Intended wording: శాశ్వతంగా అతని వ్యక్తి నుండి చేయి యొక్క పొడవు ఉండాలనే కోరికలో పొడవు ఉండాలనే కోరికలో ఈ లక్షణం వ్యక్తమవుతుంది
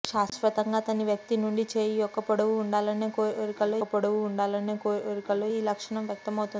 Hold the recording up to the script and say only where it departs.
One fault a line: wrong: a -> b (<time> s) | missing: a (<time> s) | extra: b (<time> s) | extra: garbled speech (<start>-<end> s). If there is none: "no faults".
no faults